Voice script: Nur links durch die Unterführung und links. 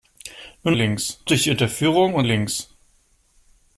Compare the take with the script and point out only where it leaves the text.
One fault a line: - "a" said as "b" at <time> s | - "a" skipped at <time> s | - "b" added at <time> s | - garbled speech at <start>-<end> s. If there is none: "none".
none